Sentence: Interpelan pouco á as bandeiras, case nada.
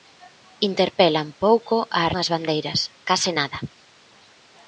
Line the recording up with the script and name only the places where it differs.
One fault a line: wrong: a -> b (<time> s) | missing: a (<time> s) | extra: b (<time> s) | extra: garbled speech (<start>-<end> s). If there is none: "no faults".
no faults